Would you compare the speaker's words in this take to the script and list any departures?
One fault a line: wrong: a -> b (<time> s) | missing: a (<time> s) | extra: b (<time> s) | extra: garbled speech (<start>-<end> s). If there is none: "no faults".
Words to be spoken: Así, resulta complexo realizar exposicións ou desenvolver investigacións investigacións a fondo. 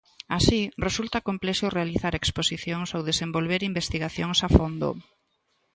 missing: investigacións (4.4 s)